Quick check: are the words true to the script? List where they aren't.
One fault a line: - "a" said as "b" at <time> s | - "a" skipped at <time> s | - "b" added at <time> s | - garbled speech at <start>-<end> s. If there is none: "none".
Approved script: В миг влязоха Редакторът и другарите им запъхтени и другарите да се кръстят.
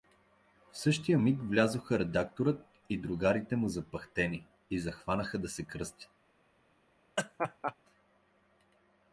- "същия" added at 0.8 s
- "им" said as "му" at 3.6 s
- "другарите" said as "захванаха" at 4.8 s